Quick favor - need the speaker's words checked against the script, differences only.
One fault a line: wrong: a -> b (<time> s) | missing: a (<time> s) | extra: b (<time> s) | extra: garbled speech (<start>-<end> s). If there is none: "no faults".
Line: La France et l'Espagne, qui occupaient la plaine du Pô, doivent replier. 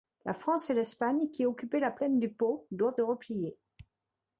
no faults